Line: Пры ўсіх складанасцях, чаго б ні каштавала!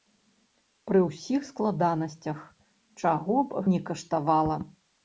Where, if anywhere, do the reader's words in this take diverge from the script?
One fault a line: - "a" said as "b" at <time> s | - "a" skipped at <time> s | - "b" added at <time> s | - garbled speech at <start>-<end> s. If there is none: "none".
none